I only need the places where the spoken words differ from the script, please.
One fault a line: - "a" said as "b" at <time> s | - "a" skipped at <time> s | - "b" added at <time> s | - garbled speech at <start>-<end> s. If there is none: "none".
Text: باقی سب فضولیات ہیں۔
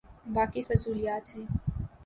- "سب" skipped at 0.6 s